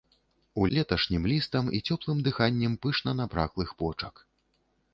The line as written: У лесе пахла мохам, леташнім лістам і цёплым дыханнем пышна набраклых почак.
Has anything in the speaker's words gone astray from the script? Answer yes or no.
yes